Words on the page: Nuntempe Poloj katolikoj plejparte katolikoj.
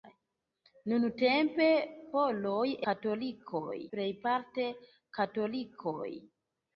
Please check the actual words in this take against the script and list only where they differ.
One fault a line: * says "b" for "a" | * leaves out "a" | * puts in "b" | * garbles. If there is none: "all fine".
all fine